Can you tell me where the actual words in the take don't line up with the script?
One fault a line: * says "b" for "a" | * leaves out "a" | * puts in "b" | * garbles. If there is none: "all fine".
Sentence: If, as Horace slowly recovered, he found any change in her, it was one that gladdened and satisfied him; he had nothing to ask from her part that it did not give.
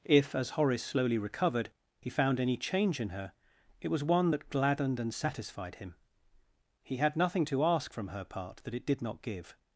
all fine